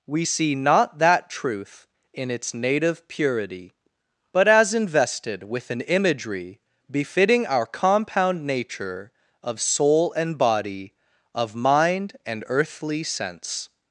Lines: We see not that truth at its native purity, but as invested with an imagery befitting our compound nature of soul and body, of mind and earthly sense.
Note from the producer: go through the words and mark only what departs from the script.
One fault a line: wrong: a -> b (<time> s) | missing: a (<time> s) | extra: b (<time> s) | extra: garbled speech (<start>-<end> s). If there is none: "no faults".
wrong: at -> in (2.1 s)